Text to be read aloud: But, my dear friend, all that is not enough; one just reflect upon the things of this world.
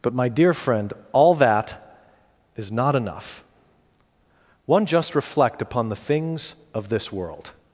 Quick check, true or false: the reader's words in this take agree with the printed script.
true